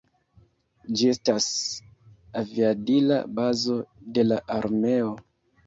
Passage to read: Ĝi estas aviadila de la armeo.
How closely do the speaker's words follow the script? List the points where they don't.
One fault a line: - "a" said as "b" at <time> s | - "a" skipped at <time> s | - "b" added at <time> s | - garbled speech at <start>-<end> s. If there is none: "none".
- "bazo" added at 3.4 s